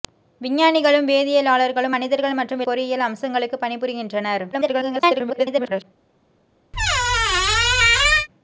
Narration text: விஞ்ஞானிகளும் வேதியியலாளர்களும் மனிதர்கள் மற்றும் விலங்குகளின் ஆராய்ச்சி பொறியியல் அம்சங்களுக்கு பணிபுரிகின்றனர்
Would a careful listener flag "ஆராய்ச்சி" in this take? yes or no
yes